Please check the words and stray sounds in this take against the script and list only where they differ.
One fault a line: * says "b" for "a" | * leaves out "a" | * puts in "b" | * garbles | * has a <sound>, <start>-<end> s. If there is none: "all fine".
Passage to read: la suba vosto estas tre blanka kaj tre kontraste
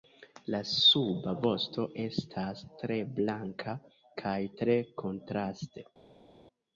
all fine